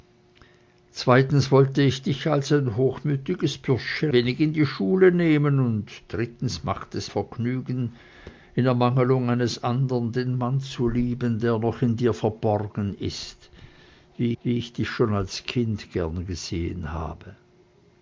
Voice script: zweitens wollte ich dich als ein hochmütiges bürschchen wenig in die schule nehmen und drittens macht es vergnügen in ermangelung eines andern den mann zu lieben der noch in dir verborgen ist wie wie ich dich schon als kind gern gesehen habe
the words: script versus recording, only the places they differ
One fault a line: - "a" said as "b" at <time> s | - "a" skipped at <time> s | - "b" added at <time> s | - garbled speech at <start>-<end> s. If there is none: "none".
none